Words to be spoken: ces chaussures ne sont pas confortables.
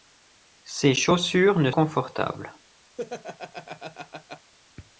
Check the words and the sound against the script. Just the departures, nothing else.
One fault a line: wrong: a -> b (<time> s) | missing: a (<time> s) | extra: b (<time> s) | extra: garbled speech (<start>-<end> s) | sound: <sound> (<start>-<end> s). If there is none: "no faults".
missing: sont pas (1.7 s)
sound: laugh (3.0-4.5 s)